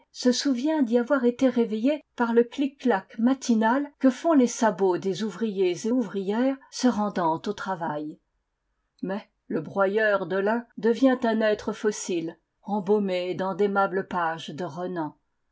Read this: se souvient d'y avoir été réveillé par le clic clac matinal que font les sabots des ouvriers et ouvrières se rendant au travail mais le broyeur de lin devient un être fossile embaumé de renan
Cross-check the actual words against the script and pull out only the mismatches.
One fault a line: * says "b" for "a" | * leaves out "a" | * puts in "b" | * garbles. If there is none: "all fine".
* puts in "dans d'aimables pages"